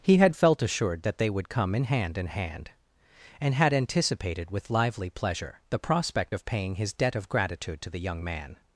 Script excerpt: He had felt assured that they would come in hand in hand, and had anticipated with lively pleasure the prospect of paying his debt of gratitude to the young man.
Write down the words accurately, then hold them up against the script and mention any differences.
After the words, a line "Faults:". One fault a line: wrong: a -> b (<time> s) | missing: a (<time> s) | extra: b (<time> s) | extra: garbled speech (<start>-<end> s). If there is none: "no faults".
He had felt assured that they would come in hand in hand, and had anticipated with lively pleasure the prospect of paying his debt of gratitude to the young man.
Faults:
no faults